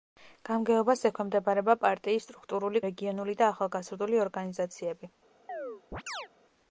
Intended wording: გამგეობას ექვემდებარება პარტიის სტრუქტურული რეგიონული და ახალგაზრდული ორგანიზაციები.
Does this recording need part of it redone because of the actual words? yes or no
no